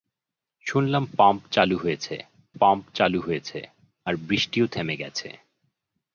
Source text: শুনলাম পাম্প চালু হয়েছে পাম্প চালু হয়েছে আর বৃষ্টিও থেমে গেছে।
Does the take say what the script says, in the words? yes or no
yes